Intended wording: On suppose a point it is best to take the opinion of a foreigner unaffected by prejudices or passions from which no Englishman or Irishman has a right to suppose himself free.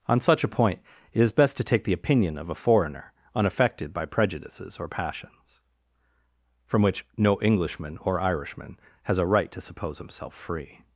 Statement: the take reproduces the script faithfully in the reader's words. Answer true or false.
false